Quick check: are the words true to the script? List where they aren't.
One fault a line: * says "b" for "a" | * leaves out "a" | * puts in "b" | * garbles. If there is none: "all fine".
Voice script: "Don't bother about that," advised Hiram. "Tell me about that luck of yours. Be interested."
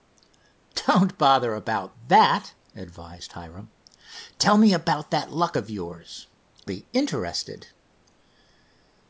all fine